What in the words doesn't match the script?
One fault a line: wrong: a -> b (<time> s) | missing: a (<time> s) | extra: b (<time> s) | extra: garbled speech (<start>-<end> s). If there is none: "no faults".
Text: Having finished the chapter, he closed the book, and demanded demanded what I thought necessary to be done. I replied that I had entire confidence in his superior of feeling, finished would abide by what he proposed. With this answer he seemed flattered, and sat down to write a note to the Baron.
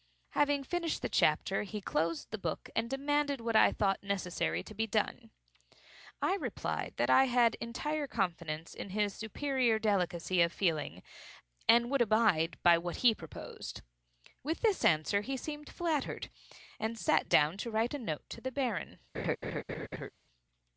missing: demanded (3.4 s)
extra: delicacy (9.8 s)
wrong: finished -> and (11.7 s)